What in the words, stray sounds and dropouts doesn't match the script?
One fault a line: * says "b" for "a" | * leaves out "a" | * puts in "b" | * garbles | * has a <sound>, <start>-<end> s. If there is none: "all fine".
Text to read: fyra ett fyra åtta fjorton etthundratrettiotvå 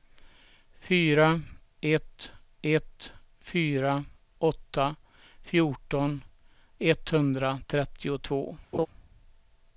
* puts in "ett"
* has a laugh, 8.7-8.9 s